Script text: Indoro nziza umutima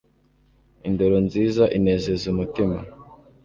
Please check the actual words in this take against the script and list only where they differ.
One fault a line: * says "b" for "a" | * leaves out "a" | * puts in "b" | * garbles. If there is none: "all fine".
* puts in "inezeza"